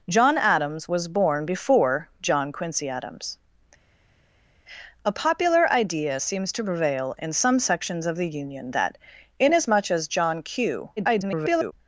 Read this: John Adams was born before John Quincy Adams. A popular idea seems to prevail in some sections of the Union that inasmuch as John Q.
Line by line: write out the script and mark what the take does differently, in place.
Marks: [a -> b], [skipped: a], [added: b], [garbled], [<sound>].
John Adams was born before John Quincy Adams. A popular idea seems to prevail in some sections of the Union that inasmuch as John Q. [garbled]